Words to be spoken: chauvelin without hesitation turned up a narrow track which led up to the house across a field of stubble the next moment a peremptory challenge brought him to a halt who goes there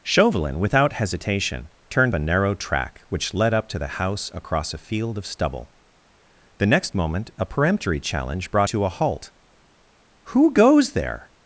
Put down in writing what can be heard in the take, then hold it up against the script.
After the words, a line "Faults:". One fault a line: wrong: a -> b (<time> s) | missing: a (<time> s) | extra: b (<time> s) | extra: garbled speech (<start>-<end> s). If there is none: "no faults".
chauvelin without hesitation turned a narrow track which led up to the house across a field of stubble the next moment a peremptory challenge brought to a halt who goes there
Faults:
missing: up (2.1 s)
missing: him (8.7 s)